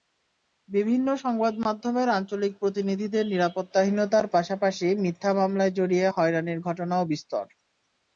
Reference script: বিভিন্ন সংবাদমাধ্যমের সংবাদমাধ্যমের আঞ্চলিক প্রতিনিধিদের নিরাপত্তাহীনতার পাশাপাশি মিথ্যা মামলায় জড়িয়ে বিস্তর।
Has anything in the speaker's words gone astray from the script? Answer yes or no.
yes